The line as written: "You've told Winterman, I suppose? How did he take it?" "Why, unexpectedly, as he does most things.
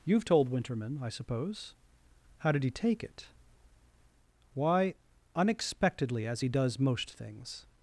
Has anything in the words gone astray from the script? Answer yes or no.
no